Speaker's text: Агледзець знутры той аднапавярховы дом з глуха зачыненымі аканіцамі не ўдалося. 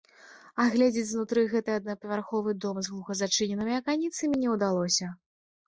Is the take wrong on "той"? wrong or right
wrong